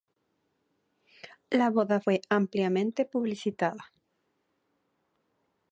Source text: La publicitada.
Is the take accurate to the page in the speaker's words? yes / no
no